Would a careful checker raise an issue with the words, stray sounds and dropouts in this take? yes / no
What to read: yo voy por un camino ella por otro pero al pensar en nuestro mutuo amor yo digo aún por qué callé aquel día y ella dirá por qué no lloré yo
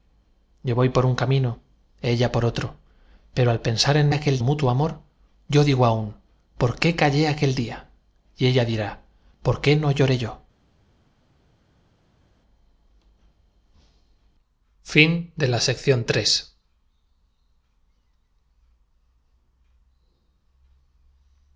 yes